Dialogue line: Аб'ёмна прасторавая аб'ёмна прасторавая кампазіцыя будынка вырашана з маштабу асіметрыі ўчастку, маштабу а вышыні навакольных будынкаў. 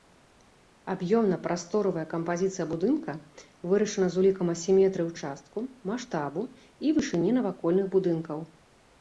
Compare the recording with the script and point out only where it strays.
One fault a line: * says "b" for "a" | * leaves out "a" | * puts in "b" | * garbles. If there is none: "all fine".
* leaves out "аб'ёмна прасторавая"
* says "улікам" for "маштабу"
* says "і" for "а"